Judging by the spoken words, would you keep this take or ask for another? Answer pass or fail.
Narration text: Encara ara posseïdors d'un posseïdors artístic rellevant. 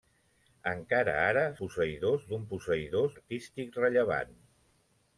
pass